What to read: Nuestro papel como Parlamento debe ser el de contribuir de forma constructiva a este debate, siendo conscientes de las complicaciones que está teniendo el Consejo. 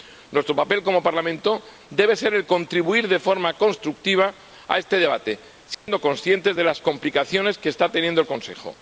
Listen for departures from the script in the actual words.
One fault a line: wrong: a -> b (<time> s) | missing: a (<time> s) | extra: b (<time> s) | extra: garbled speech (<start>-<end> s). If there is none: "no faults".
no faults